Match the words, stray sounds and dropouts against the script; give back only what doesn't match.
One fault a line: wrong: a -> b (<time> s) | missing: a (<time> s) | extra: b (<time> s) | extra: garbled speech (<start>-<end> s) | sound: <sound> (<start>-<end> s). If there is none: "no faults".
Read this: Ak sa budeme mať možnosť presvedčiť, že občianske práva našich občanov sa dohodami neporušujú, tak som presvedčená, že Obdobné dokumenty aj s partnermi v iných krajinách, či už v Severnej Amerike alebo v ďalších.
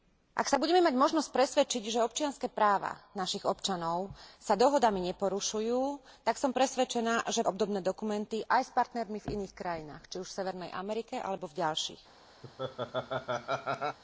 sound: laugh (12.4-14.0 s)